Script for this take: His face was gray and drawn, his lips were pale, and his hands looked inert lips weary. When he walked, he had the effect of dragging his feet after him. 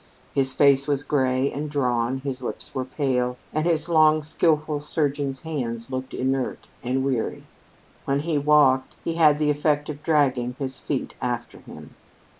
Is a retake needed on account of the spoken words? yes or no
yes